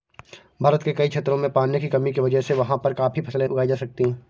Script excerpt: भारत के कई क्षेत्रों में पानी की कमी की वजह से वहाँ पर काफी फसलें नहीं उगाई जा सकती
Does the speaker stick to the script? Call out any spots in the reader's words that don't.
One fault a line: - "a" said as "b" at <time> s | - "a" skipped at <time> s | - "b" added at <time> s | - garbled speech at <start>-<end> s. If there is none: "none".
- "नहीं" skipped at 3.5 s